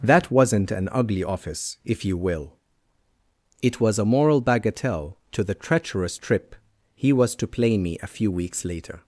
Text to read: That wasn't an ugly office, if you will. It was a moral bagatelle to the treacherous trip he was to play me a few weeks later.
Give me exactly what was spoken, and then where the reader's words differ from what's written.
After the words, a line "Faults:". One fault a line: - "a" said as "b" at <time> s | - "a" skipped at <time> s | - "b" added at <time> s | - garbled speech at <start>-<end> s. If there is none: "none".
That wasn't an ugly office, if you will. It was a moral bagatelle to the treacherous trip he was to play me a few weeks later.
Faults:
none